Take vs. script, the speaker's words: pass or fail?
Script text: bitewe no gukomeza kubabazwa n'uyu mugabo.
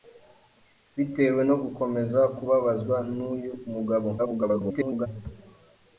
fail